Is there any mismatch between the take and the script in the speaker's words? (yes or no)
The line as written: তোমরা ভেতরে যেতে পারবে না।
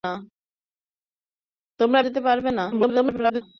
yes